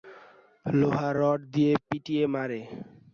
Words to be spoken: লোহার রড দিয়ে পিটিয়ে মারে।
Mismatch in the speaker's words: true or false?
false